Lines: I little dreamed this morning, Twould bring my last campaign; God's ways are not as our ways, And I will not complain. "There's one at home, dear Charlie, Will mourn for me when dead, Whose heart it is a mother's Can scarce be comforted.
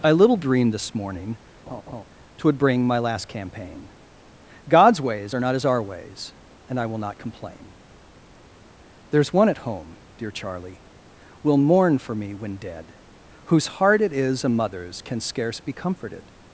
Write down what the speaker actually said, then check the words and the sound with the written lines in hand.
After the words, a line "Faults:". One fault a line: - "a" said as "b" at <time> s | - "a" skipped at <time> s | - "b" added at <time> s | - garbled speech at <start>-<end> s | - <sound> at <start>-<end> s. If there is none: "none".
I little dreamed this morning, Twould bring my last campaign; God's ways are not as our ways, And I will not complain. "There's one at home, dear Charlie, Will mourn for me when dead, Whose heart it is a mother's Can scarce be comforted.
Faults:
- laugh at 1.7-2.0 s